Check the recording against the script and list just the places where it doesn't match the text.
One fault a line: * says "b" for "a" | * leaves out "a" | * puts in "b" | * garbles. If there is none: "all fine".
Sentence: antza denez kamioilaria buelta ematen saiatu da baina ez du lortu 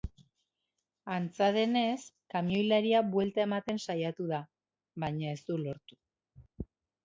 all fine